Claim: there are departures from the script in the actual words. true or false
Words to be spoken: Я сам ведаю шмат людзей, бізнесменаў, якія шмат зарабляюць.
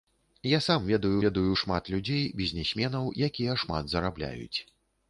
true